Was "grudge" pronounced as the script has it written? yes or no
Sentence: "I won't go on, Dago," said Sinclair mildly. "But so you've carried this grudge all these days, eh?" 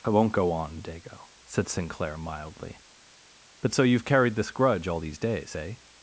yes